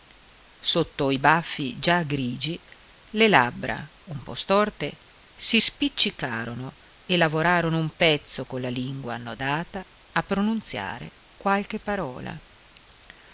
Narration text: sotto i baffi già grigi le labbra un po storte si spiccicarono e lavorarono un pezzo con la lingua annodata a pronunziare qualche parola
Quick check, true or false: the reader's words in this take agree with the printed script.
true